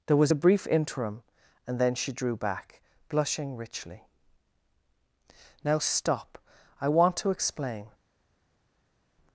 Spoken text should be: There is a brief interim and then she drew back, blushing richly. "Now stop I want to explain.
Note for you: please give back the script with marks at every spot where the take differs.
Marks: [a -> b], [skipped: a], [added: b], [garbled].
There [is -> was] a brief interim and then she drew back, blushing richly. "Now stop I want to explain.